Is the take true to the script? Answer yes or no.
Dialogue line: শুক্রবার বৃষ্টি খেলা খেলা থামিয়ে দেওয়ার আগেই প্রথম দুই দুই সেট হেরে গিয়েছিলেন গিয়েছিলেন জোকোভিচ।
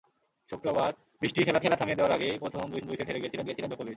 yes